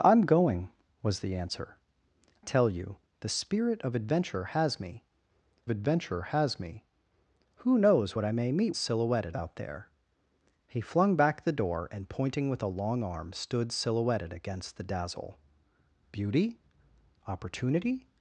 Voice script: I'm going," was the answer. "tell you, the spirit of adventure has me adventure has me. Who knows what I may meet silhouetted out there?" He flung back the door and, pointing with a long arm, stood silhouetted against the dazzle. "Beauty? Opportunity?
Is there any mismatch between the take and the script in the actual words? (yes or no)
no